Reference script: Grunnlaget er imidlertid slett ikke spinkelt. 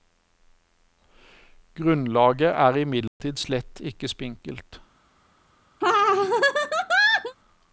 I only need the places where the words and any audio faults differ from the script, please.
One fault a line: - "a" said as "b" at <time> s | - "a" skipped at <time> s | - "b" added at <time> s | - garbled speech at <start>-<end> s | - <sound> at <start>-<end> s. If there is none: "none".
- dropout at 3.1-3.2 s
- laugh at 5.8-7.4 s